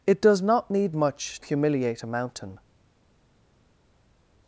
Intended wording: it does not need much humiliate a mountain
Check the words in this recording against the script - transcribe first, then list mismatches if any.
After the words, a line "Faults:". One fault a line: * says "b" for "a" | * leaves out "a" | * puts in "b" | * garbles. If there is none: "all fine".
it does not need much humiliate a mountain
Faults:
all fine